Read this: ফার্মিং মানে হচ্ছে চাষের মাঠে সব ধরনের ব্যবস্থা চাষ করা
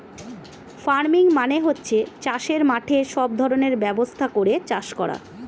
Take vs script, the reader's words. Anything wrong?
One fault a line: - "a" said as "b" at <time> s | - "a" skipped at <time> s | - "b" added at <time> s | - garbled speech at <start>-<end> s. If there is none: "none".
- "করে" added at 4.3 s